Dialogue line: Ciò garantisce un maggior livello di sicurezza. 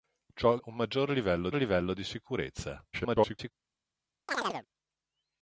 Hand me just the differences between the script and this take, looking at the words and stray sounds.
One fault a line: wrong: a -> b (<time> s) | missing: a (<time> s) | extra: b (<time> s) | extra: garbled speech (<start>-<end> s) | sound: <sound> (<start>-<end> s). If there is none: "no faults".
missing: garantisce (0.6 s)
extra: livello (1.5 s)
extra: garbled speech (2.9-3.5 s)
sound: chirp (4.3-4.7 s)